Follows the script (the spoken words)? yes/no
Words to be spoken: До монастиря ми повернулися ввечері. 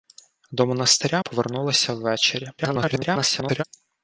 no